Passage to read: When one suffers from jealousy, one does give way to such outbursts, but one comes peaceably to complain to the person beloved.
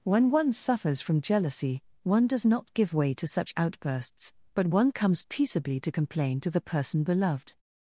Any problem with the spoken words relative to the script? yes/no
yes